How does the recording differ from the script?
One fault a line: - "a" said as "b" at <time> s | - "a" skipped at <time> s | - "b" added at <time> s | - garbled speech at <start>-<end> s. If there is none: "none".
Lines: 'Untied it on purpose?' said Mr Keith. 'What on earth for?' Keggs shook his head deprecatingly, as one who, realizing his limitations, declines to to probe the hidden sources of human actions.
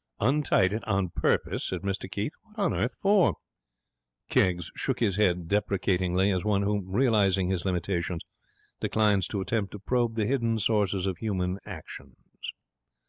- "attempt" added at 9.4 s